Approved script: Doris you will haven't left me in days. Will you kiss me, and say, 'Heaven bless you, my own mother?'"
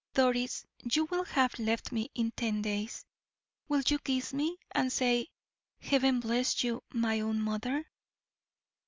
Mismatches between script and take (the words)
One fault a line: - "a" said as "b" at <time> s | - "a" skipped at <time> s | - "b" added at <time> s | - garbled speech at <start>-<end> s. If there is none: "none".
- "haven't" said as "have" at 1.2 s
- "ten" added at 2.3 s